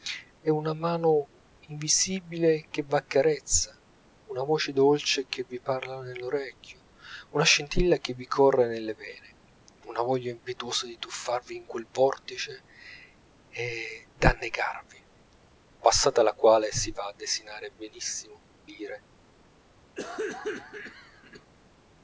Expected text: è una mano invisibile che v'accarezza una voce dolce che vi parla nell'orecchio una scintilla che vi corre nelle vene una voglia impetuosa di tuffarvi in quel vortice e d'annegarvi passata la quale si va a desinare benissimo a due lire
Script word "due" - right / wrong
wrong